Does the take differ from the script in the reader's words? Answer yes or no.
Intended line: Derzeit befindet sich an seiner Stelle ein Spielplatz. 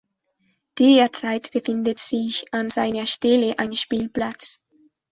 no